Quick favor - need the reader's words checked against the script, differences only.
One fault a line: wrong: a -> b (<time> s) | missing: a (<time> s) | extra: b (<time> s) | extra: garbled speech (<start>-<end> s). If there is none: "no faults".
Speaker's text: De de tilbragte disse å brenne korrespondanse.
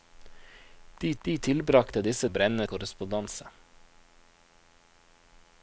no faults